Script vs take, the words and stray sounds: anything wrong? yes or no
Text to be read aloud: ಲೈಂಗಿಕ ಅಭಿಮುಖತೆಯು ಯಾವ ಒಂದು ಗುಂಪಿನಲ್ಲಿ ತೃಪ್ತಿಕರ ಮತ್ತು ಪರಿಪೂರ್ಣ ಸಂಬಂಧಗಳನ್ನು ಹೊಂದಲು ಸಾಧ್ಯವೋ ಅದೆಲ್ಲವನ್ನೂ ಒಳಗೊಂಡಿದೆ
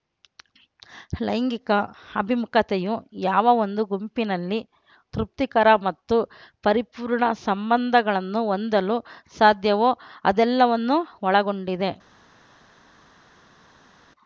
no